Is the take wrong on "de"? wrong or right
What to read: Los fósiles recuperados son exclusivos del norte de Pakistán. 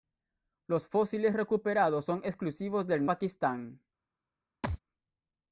wrong